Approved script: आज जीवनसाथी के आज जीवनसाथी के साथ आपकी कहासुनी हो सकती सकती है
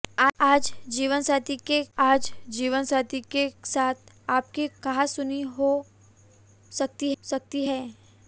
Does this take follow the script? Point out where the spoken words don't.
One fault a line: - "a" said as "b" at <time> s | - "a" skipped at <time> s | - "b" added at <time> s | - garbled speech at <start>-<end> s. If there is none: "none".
none